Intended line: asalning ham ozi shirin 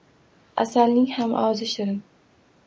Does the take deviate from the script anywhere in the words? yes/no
no